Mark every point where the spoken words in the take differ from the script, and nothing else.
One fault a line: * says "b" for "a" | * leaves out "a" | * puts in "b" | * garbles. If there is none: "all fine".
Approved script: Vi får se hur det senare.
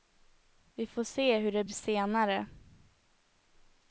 all fine